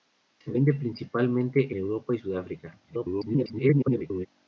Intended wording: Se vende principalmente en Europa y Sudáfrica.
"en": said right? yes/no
no